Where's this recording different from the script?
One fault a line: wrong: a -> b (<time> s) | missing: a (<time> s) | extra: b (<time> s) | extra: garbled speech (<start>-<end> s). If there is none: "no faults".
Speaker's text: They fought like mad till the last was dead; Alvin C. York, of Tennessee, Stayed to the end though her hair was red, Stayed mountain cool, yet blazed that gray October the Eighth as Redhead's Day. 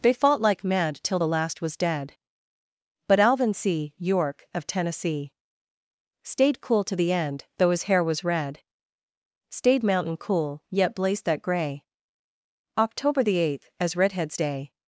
extra: But (3.1 s)
extra: cool (6.6 s)
wrong: her -> his (7.7 s)